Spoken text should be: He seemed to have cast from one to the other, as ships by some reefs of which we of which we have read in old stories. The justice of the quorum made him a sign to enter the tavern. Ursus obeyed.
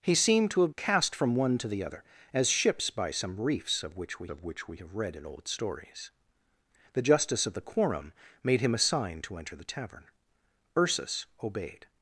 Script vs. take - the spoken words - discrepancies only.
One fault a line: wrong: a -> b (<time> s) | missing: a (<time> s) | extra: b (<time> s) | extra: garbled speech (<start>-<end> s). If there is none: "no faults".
no faults